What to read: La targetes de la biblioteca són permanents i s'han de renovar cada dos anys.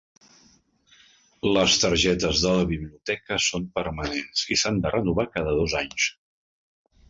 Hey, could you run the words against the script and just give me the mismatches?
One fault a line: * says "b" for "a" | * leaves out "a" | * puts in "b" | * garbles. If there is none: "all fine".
* says "Les" for "La"